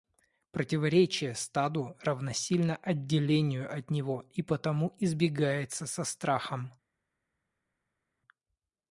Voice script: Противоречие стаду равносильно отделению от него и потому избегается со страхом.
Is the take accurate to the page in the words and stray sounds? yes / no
yes